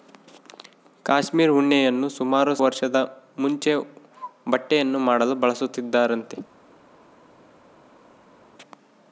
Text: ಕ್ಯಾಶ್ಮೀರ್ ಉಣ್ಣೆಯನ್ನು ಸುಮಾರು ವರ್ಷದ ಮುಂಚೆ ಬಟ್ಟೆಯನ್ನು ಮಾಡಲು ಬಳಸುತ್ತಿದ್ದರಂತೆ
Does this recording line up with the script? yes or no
yes